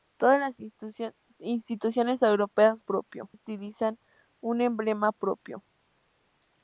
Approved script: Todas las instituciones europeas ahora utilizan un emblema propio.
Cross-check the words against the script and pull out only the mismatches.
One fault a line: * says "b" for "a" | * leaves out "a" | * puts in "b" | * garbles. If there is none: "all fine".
* says "propio" for "ahora"